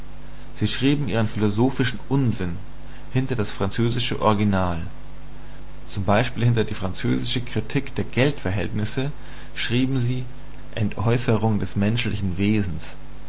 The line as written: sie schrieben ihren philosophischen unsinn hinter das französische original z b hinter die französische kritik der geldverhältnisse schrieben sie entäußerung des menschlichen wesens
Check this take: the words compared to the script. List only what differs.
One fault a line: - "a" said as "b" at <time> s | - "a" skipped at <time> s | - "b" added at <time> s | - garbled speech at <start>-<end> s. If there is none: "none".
none